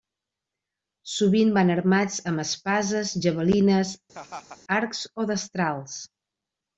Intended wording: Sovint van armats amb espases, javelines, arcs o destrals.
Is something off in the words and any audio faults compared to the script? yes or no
yes